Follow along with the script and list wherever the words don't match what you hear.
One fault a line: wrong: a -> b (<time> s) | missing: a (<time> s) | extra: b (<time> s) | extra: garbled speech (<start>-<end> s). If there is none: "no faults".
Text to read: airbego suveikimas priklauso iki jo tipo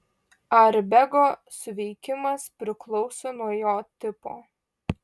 wrong: iki -> nuo (3.4 s)